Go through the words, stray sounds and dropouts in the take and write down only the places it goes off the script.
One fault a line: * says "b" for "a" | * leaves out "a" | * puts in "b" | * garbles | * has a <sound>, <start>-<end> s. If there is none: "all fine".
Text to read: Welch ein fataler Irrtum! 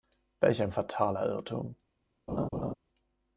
* has a laugh, 2.3-2.7 s